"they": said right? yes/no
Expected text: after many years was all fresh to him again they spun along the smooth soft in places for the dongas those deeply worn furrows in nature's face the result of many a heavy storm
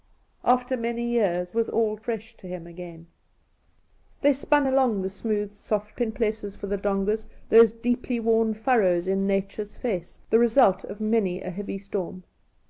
yes